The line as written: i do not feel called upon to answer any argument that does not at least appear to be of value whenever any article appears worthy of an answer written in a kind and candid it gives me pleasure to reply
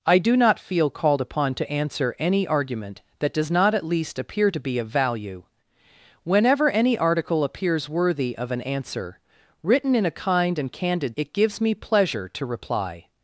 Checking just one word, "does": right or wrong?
right